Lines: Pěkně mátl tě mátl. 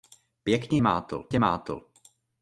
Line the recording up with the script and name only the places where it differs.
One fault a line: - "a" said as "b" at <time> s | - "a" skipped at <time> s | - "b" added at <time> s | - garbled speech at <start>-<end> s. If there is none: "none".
none